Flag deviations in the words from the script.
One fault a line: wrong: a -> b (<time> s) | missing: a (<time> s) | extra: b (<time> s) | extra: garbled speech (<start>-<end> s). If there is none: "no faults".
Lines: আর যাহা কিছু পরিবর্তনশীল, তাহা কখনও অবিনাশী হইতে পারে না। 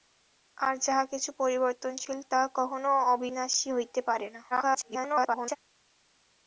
extra: garbled speech (4.5-5.6 s)